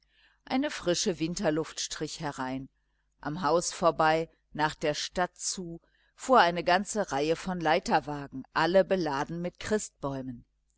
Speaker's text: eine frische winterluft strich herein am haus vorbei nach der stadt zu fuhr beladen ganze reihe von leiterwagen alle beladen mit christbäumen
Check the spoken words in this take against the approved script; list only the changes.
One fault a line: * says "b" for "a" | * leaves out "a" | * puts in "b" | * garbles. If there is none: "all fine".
* says "eine" for "beladen"